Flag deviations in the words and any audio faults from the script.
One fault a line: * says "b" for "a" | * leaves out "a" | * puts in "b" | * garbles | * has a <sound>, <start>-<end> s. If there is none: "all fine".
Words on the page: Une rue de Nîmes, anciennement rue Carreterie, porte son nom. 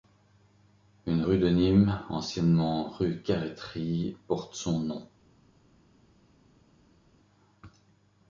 all fine